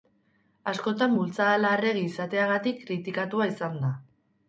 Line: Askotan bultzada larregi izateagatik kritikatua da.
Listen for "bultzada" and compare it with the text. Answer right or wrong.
right